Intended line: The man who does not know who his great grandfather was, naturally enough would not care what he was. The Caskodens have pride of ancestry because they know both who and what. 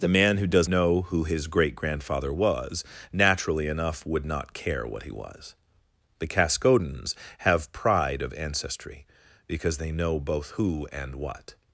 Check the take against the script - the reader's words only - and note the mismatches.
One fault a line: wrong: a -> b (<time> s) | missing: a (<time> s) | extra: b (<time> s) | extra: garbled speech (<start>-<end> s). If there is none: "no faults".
missing: not (0.7 s)